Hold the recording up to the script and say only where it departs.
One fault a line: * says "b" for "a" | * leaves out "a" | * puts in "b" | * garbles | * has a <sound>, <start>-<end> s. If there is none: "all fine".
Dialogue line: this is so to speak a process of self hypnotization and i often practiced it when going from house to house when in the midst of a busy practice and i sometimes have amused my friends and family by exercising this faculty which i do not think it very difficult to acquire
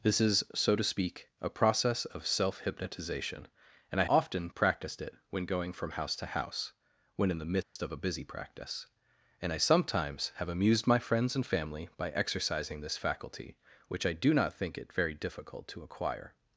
* has a dropout, 7.6-7.8 s